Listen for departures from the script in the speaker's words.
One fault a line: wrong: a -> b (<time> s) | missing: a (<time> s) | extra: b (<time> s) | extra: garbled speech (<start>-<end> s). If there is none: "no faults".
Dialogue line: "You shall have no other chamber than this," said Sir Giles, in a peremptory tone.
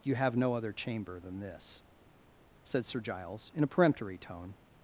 missing: shall (0.1 s)